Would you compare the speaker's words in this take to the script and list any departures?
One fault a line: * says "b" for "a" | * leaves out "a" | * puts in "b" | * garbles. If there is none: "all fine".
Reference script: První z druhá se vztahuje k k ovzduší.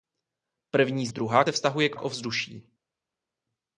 all fine